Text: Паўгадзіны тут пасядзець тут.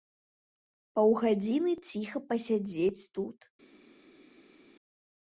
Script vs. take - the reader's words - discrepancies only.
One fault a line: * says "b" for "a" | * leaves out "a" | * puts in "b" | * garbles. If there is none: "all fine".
* says "ціха" for "тут"